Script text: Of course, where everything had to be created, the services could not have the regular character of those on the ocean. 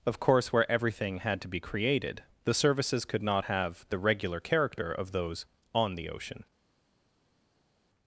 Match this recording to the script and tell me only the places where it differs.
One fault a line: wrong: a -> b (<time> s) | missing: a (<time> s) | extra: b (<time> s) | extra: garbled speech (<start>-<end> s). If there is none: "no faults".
no faults